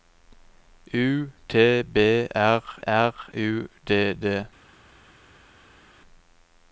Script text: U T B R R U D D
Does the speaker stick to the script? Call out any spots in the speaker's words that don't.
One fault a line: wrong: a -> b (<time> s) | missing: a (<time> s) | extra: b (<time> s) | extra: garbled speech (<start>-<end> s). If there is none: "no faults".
no faults